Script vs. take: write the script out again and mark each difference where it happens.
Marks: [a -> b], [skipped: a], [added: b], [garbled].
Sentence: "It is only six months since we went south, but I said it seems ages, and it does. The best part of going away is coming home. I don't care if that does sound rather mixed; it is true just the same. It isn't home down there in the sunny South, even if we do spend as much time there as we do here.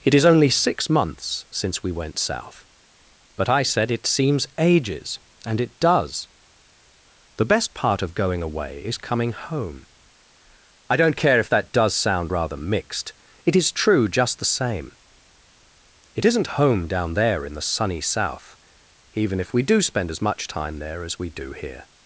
"It is only six months since we went south, but I said it seems ages, and it does. The best part of going away is coming home. I don't care if that does sound rather mixed; it is true just the same. It isn't home down there in the sunny South, even if we do spend as much time there as we do here.